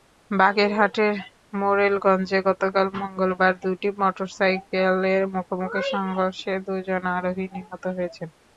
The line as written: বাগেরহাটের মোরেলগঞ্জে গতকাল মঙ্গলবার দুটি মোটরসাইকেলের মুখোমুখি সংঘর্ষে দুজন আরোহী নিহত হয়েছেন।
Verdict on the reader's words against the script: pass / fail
pass